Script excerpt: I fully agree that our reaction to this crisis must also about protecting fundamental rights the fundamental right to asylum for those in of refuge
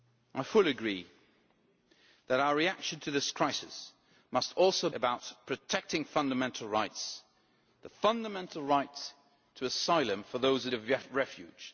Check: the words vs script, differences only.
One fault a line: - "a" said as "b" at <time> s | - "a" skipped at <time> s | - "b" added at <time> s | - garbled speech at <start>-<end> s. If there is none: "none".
none